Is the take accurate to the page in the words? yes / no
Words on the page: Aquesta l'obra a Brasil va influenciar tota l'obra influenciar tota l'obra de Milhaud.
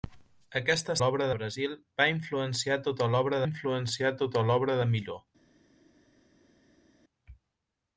yes